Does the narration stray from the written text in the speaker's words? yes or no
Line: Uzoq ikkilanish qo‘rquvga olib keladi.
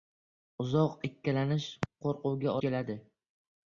yes